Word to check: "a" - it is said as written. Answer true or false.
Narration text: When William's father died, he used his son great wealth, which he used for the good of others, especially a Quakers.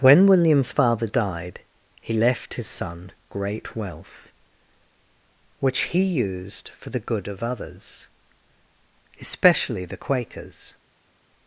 false